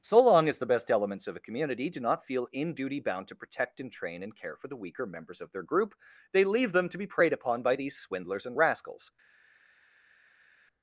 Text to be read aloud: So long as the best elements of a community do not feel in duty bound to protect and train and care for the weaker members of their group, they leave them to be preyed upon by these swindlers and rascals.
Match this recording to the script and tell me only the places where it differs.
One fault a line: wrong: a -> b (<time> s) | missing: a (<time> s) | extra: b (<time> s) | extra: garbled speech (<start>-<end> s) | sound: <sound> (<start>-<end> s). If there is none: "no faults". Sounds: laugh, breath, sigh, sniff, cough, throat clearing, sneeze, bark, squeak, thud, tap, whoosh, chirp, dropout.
no faults